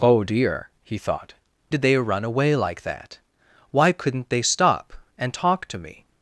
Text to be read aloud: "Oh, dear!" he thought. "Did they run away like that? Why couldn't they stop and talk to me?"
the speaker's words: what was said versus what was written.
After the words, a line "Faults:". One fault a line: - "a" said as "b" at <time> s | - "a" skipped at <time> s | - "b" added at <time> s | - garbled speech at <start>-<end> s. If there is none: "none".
"Oh, dear!" he thought. "Did they run away like that? Why couldn't they stop and talk to me?"
Faults:
none